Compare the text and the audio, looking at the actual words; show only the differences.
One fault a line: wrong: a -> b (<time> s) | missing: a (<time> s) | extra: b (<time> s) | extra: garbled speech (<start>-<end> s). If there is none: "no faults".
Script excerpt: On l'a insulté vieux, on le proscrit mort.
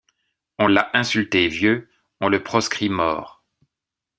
no faults